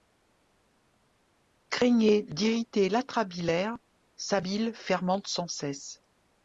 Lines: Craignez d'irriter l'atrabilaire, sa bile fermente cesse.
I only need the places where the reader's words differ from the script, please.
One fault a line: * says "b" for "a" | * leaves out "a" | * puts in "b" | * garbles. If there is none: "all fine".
* puts in "sans"